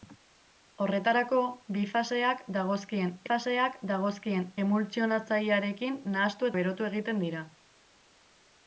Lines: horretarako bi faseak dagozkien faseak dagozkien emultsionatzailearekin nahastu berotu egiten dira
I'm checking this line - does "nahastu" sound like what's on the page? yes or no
yes